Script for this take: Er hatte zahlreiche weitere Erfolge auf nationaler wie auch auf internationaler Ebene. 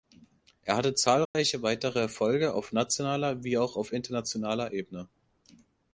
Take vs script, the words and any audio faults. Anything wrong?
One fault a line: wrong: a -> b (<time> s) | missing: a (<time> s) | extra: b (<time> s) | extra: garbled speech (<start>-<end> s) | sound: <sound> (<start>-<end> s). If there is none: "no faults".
sound: dropout (1.3-1.3 s)